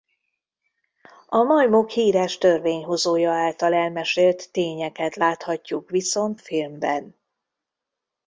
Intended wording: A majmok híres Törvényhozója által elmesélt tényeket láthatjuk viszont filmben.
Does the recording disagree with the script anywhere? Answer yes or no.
no